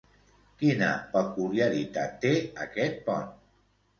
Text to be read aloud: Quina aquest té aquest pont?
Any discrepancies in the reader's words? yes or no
yes